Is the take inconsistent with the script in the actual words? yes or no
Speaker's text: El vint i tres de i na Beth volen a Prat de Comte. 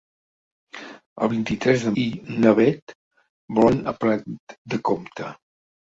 no